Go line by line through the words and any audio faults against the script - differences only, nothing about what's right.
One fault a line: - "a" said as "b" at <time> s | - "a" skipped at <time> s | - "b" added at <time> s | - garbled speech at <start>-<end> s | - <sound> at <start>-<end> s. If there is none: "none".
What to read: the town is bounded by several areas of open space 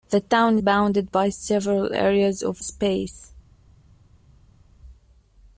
- "is" skipped at 0.6 s
- "open" skipped at 2.6 s